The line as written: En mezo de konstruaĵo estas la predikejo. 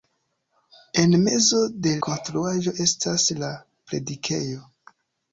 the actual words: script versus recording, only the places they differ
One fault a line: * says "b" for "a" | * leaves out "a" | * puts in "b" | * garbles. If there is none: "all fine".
all fine